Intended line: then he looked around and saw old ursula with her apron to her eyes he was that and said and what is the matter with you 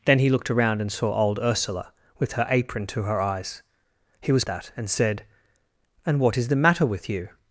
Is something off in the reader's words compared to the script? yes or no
no